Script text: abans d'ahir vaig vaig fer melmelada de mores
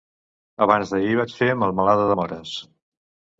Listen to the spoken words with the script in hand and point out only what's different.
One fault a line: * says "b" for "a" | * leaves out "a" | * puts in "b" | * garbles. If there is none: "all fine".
* leaves out "vaig"